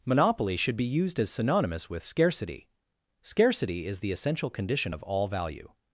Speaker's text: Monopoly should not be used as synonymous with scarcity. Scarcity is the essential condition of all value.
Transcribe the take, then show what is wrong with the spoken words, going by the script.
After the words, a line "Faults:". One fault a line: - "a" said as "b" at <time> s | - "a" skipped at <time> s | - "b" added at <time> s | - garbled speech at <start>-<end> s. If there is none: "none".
Monopoly should be used as synonymous with scarcity. Scarcity is the essential condition of all value.
Faults:
- "not" skipped at 0.8 s